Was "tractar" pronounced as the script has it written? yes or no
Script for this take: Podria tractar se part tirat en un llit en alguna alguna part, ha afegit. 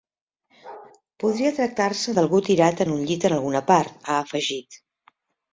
yes